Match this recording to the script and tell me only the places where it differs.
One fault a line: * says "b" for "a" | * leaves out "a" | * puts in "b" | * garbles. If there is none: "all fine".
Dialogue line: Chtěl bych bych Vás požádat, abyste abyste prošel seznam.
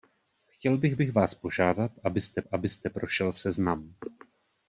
all fine